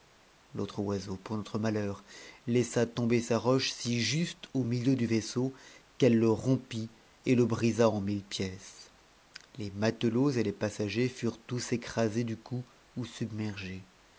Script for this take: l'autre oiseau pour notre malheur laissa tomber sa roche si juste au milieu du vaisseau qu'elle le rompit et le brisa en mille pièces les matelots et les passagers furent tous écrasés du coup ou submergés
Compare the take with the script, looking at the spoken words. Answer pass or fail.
pass